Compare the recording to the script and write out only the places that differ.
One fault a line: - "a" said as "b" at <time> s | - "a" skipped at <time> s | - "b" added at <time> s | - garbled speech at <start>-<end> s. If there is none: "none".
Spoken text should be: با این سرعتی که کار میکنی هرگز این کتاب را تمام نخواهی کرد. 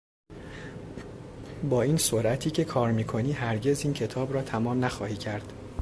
none